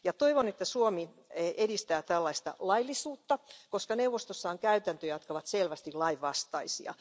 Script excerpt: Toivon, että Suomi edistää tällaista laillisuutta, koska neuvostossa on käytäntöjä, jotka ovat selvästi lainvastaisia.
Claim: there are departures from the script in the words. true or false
false